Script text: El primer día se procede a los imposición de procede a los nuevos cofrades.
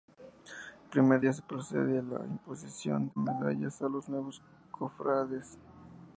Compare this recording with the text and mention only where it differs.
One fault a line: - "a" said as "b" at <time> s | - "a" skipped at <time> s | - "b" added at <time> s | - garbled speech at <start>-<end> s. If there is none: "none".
- "los" said as "la" at 2.0 s
- "procede" said as "medallas" at 3.2 s